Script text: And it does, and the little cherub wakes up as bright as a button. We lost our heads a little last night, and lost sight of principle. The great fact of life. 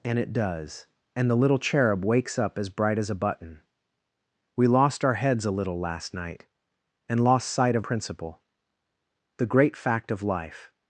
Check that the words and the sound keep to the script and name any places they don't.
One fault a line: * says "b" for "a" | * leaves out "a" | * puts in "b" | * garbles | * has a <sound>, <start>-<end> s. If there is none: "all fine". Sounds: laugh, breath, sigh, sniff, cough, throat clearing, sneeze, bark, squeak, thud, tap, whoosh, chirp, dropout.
all fine